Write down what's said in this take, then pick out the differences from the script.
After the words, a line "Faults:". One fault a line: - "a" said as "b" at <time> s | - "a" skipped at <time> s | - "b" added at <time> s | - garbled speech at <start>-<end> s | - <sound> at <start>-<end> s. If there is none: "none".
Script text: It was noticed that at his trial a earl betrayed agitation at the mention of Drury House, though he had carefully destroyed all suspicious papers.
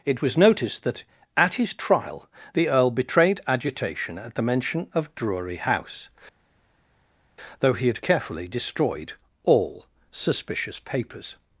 It was noticed that at his trial the earl betrayed agitation at the mention of Drury House, though he had carefully destroyed all suspicious papers.
Faults:
- "a" said as "the" at 2.5 s